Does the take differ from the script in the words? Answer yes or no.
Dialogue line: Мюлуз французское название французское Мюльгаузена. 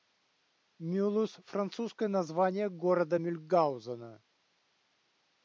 yes